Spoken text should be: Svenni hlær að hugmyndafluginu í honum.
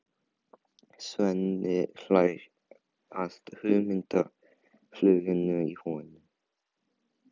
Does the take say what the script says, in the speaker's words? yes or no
yes